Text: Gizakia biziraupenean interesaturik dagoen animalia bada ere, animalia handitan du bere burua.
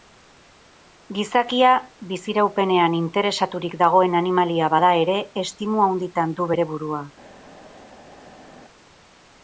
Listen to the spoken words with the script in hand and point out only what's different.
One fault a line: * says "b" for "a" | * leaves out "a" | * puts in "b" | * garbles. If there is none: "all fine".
* says "estimu" for "animalia"